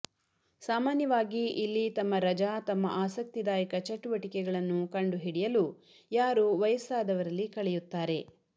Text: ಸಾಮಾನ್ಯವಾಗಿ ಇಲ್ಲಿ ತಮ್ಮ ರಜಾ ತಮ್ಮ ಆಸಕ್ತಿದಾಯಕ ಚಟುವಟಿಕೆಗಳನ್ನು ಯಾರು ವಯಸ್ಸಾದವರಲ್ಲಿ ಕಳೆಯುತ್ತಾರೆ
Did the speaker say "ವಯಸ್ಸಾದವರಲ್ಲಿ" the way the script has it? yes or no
yes